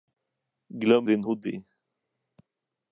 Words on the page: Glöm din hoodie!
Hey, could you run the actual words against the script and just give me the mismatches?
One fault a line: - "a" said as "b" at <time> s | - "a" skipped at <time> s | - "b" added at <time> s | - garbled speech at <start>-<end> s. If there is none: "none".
none